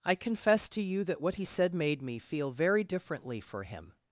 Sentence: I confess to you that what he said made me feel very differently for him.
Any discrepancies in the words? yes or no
no